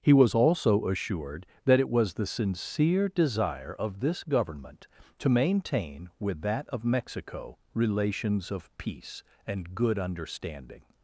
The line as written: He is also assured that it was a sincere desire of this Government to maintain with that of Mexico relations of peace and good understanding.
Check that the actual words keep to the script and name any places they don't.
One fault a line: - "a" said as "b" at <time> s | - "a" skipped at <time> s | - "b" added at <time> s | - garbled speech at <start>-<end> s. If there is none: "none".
- "is" said as "was" at 0.1 s
- "a" said as "the" at 2.1 s